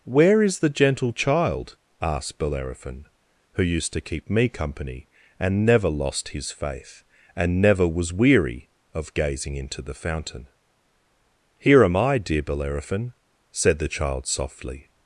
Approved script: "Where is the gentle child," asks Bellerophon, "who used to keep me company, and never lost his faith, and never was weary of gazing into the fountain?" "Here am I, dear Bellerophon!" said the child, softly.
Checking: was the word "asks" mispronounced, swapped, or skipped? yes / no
yes